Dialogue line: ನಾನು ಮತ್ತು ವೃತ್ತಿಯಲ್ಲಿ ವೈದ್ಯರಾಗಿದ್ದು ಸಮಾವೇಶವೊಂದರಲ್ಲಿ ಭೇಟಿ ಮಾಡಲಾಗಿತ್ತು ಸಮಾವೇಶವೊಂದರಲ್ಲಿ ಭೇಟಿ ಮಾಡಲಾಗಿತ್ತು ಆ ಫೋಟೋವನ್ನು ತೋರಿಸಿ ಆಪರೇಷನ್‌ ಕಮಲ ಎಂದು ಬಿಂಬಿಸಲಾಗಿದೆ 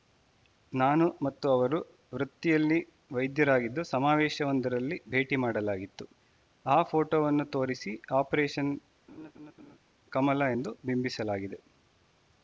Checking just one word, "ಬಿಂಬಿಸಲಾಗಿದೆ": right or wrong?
right